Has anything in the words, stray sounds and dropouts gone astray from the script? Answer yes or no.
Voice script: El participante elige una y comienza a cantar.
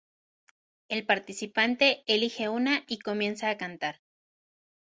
no